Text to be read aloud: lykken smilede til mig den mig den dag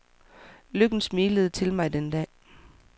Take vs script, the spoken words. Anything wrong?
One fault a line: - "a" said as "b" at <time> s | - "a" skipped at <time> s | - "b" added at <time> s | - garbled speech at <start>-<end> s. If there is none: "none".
- "mig den" skipped at 2.1 s